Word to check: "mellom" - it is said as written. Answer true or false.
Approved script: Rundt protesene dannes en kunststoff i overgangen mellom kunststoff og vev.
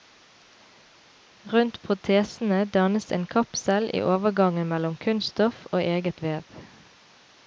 true